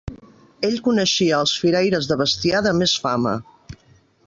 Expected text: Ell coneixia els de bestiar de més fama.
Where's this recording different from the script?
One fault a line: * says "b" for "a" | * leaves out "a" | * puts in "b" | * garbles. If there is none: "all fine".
* puts in "firaires"